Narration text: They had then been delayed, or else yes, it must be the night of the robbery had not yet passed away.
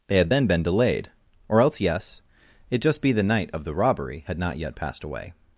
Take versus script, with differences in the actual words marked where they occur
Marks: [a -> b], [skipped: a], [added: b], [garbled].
They had then been delayed, or else yes, it [must -> just] be the night of the robbery had not yet passed away.